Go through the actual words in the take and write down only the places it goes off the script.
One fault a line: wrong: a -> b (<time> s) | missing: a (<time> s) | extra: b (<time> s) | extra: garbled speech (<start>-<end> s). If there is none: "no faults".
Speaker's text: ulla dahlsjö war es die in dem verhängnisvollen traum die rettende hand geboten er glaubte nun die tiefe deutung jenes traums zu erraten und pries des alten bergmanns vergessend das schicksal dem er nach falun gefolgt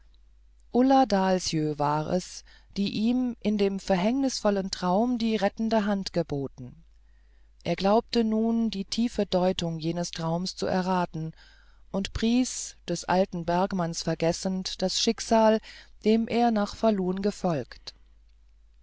extra: ihm (2.9 s)